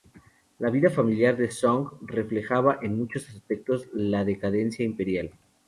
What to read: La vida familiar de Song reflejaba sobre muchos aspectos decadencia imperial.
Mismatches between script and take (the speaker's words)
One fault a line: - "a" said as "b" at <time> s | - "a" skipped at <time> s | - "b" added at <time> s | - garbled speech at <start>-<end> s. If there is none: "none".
- "sobre" said as "en" at 2.8 s
- "la" added at 3.9 s